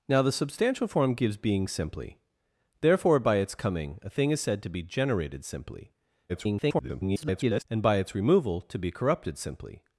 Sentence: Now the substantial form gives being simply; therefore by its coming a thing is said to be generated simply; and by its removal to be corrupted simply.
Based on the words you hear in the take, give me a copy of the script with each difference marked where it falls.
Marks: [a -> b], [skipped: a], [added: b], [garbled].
Now the substantial form gives being simply; therefore by its coming a thing is said to be generated simply; [garbled] and by its removal to be corrupted simply.